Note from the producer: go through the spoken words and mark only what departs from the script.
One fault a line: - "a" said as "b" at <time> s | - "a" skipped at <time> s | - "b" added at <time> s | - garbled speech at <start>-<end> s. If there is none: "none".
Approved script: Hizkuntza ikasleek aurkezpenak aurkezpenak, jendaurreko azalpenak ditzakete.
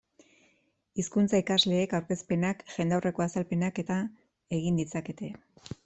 - "aurkezpenak" skipped at 2.6 s
- "eta egin" added at 3.8 s